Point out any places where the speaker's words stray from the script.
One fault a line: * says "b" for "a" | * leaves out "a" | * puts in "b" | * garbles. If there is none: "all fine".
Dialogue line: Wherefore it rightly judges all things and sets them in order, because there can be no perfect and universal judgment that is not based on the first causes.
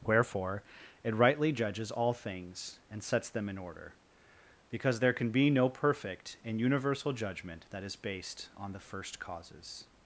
* leaves out "not"